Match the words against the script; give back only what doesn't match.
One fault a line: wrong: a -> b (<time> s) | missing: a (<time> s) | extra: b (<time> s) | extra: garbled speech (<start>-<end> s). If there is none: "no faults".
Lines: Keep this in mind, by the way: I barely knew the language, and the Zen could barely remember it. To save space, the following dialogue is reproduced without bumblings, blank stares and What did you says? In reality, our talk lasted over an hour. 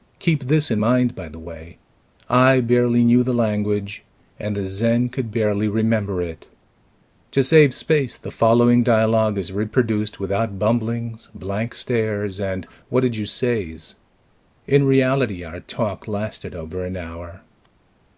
no faults